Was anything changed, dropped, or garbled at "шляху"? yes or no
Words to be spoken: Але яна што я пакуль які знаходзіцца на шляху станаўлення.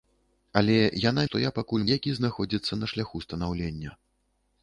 no